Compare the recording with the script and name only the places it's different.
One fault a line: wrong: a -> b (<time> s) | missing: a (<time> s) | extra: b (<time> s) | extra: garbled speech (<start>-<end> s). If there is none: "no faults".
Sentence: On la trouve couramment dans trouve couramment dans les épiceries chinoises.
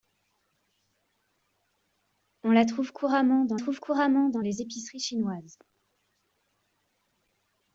no faults